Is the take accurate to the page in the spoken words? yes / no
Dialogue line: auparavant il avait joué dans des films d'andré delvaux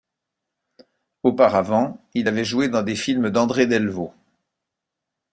yes